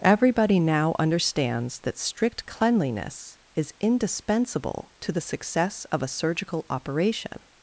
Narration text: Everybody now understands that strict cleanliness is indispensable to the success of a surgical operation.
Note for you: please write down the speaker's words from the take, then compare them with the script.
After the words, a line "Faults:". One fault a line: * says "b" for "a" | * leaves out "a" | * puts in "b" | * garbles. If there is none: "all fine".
Everybody now understands that strict cleanliness is indispensable to the success of a surgical operation.
Faults:
all fine